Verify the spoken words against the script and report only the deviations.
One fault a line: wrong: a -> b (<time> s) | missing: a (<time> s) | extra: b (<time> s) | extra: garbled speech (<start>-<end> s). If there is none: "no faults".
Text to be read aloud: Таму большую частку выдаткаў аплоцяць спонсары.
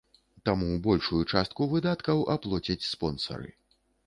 no faults